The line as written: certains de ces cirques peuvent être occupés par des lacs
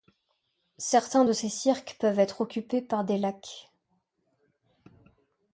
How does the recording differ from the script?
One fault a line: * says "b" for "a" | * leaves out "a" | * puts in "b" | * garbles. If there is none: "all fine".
all fine